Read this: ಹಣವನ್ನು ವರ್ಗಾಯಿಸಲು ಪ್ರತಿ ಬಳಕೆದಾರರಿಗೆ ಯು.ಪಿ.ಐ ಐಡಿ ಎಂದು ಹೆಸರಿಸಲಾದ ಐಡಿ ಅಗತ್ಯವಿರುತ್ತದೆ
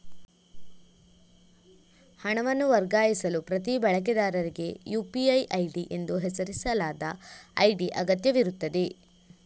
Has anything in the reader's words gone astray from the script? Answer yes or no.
no